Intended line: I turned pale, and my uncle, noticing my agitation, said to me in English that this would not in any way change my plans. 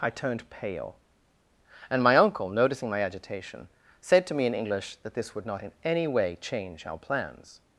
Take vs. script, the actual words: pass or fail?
fail